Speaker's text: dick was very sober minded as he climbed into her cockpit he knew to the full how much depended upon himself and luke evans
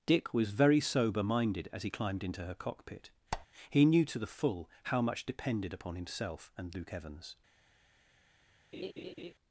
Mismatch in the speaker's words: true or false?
false